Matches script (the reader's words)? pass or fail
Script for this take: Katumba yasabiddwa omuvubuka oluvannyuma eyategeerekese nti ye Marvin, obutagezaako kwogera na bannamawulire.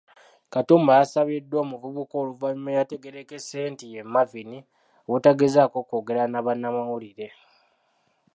pass